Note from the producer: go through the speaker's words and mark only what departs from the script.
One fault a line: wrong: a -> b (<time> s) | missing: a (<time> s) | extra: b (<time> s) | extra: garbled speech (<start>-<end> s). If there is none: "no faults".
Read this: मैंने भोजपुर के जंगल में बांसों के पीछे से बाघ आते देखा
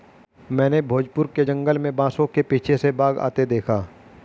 no faults